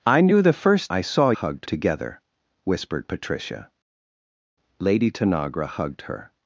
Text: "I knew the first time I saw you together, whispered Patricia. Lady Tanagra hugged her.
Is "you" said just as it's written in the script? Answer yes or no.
no